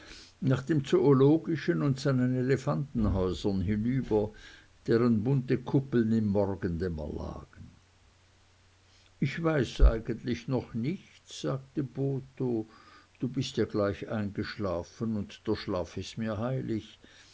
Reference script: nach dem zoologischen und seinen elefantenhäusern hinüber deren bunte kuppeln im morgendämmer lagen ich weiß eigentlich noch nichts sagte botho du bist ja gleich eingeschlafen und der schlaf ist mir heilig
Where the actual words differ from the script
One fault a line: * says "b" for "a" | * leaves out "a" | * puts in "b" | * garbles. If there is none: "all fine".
all fine